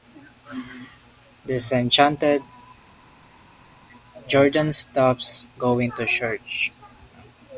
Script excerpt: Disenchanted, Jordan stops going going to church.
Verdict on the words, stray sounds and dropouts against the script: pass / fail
fail